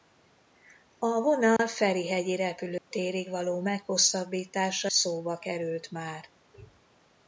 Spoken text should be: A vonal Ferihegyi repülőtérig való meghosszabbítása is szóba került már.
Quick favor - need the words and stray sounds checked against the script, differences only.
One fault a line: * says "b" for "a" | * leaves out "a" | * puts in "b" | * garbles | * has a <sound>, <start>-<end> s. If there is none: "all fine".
* has a dropout, 1.6-1.6 s
* has a dropout, 2.8-2.9 s
* leaves out "is"